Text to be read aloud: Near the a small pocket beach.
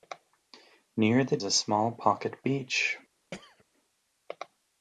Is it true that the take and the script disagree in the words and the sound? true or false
true